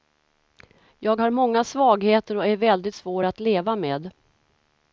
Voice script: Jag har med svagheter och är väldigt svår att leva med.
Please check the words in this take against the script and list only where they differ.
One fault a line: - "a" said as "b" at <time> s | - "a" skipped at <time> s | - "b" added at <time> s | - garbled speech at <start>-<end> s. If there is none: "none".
- "med" said as "många" at 1.3 s